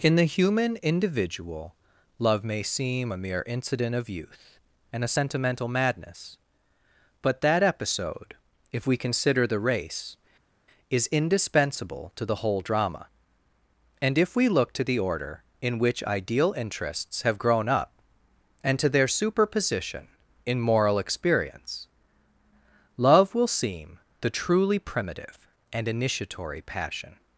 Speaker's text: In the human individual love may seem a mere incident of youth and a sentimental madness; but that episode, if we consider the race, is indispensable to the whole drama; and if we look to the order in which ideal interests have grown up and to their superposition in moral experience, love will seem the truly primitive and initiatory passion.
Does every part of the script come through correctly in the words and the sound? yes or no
yes